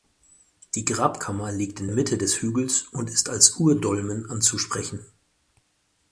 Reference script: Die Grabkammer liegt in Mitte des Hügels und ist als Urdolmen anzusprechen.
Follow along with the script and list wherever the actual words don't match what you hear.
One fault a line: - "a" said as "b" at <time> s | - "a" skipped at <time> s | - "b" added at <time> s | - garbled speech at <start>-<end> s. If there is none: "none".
none